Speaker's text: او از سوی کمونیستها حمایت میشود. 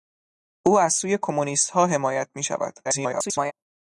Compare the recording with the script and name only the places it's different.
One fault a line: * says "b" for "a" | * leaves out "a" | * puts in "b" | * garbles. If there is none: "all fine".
* garbles